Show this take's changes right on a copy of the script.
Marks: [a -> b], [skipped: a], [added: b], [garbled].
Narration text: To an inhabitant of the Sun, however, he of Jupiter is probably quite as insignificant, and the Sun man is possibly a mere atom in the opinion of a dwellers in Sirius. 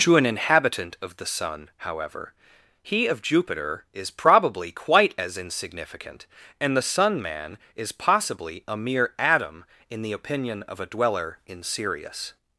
To an inhabitant of the Sun, however, he of Jupiter is probably quite as insignificant, and the Sun man is possibly a mere atom in the opinion of a [dwellers -> dweller] in Sirius.